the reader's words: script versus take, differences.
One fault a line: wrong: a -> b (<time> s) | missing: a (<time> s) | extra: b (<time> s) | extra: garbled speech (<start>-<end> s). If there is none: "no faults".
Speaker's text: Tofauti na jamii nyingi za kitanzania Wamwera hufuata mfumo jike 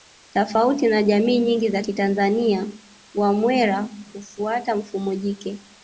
no faults